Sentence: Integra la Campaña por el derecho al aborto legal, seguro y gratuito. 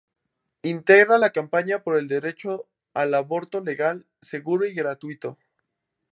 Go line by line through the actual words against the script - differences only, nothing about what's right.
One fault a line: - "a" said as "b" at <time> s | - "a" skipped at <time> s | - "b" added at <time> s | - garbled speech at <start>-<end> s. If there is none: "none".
none